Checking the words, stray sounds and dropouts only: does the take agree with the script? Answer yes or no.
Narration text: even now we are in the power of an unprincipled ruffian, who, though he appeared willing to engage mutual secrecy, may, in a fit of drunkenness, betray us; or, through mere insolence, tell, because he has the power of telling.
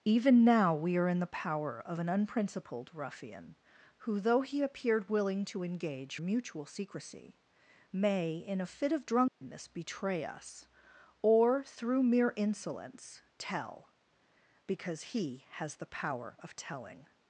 no